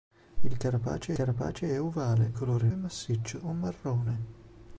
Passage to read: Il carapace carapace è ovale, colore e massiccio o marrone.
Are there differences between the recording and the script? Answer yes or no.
no